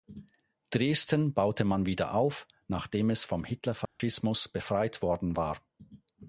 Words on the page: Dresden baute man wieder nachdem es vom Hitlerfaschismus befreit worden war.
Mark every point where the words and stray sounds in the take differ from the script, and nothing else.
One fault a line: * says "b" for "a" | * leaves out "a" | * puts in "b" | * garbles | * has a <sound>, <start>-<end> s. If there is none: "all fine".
* puts in "auf"
* has a dropout, 3.9-4.0 s